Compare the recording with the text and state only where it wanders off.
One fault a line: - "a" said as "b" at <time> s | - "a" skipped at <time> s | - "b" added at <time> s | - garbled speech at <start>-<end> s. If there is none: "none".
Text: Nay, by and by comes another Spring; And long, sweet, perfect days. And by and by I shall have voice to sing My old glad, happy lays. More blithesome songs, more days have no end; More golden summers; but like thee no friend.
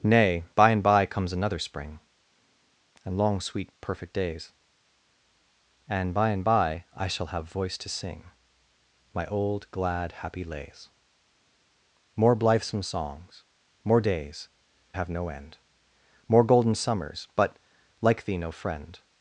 none